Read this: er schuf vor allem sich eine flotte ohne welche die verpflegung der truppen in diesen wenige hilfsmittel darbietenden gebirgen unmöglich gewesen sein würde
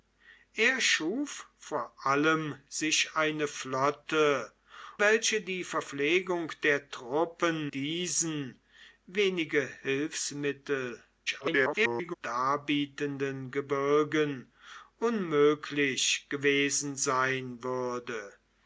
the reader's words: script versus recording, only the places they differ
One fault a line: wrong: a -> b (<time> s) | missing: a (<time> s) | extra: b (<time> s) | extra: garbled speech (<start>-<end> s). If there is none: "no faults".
missing: ohne (4.5 s)
missing: in (7.7 s)
extra: garbled speech (11.3-12.1 s)